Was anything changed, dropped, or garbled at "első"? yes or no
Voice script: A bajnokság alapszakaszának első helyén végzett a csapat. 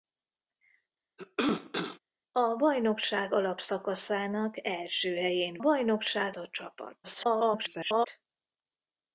no